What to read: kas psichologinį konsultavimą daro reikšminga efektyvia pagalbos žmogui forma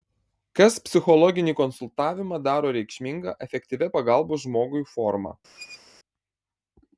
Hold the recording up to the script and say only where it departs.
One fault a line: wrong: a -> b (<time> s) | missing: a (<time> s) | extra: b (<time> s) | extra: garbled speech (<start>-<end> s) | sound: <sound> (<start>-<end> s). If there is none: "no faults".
sound: squeak (5.5-5.8 s)